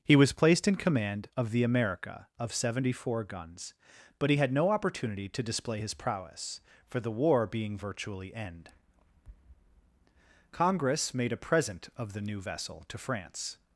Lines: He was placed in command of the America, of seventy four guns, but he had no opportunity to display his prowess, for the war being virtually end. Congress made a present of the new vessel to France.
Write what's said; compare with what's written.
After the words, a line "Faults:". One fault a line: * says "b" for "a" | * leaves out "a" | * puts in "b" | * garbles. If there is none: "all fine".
He was placed in command of the America, of seventy four guns, but he had no opportunity to display his prowess, for the war being virtually end. Congress made a present of the new vessel to France.
Faults:
all fine